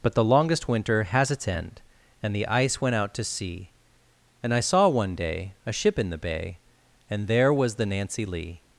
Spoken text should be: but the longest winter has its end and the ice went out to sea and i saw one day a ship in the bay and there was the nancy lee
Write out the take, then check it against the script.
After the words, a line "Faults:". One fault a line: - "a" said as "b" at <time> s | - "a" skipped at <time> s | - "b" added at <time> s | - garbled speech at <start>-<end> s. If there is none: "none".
but the longest winter has its end and the ice went out to sea and i saw one day a ship in the bay and there was the nancy lee
Faults:
none